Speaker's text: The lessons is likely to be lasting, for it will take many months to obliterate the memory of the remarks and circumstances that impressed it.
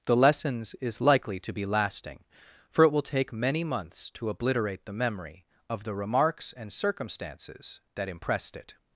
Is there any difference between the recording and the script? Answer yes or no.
no